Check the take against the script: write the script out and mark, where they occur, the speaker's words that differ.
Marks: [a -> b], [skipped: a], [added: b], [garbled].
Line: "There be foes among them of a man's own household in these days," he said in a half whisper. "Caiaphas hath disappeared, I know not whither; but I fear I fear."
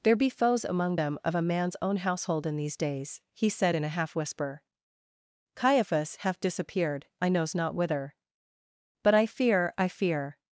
"There be foes among them of a man's own household in these days," he said in a half whisper. "Caiaphas hath disappeared, I [know -> knows] not whither; but I fear I fear."